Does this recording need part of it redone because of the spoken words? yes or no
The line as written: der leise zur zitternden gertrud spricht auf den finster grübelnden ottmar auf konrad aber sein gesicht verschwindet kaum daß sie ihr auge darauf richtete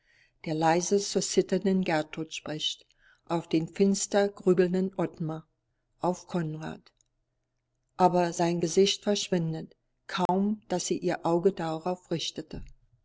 no